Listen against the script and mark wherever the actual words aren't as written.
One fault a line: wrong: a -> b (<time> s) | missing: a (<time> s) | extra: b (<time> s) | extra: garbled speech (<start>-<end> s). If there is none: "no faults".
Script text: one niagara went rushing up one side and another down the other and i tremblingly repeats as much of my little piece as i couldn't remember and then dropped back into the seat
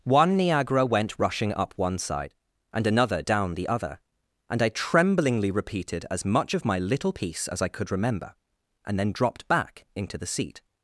wrong: repeats -> repeated (5.5 s)
wrong: couldn't -> could (7.7 s)